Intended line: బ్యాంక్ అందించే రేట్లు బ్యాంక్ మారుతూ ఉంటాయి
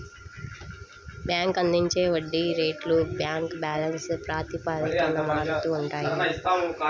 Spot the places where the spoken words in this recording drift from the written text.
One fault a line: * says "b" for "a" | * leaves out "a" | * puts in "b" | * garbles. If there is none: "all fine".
* puts in "వడ్డీ"
* puts in "బ్యాలెన్స్ ప్రాతిపదికన"